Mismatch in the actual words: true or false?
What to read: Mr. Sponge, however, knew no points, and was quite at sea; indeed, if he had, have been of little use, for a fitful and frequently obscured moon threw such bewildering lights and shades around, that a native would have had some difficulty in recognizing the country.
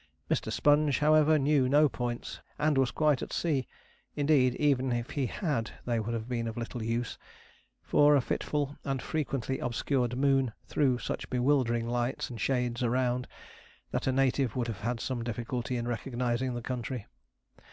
true